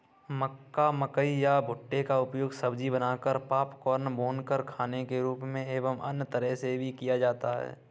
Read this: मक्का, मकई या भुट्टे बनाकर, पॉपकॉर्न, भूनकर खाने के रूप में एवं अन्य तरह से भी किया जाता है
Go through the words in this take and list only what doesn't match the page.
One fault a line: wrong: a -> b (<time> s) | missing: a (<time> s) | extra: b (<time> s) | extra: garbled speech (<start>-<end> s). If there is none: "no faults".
extra: का उपयोग सब्जी (2.0 s)